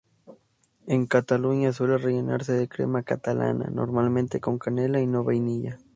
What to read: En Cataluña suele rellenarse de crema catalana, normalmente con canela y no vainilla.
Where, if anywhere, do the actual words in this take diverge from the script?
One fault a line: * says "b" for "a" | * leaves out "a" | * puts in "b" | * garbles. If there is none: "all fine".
all fine